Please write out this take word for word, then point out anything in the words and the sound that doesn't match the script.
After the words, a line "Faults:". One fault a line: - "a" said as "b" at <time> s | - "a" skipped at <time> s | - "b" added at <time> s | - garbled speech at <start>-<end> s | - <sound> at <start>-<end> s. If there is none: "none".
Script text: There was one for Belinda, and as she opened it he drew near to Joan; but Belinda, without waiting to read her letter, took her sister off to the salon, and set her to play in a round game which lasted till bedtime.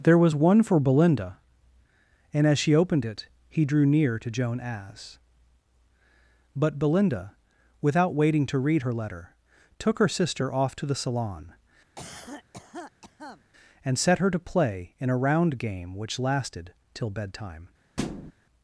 There was one for Belinda, and as she opened it he drew near to Joan; as but Belinda, without waiting to read her letter, took her sister off to the salon, and set her to play in a round game which lasted till bedtime.
Faults:
- "as" added at 4.6 s
- cough at 12.0-13.4 s
- thud at 18.0-18.3 s